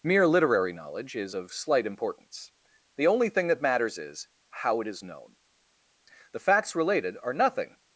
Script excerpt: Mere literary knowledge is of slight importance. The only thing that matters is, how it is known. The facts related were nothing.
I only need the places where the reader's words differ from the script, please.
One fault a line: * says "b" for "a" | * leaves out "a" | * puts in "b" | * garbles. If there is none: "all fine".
* says "are" for "were"